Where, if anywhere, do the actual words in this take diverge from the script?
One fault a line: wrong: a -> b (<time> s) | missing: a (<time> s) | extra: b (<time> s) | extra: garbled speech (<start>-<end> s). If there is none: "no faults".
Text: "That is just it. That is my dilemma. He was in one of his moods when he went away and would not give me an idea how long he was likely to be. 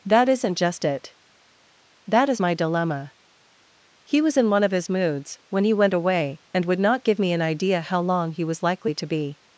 wrong: is -> isn't (0.3 s)